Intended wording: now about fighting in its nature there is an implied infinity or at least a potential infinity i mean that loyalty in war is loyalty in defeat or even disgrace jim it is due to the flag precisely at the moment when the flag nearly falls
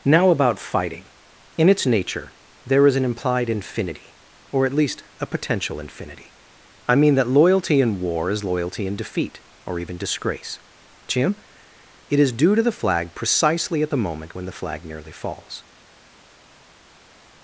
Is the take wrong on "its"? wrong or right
right